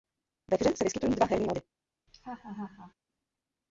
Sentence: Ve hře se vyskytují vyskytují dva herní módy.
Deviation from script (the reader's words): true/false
true